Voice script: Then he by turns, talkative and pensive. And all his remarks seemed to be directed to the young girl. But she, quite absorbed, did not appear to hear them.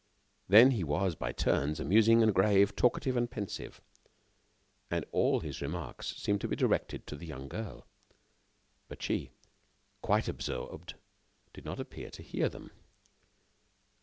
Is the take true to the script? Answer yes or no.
no